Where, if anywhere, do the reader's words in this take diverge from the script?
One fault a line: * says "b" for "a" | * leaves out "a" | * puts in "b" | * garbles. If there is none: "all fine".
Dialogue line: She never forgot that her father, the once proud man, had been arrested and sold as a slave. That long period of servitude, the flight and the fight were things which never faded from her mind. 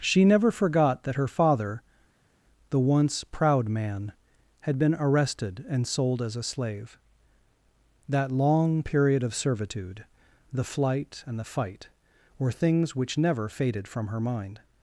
all fine